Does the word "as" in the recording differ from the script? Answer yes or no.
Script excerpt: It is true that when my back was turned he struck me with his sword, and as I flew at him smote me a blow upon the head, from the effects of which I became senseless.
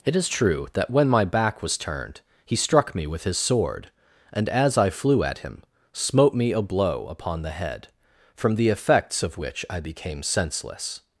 no